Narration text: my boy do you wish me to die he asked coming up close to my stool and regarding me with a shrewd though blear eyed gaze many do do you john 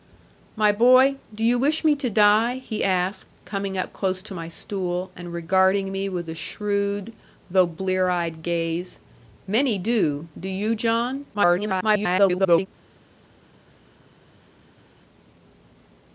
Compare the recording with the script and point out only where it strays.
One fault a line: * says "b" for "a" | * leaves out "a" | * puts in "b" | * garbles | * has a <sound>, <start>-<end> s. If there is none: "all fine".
* garbles